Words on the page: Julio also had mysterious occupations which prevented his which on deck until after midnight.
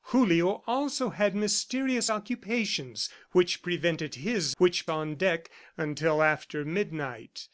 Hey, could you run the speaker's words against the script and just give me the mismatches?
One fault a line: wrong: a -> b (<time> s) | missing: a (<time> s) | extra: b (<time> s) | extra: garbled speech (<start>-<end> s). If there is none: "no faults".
no faults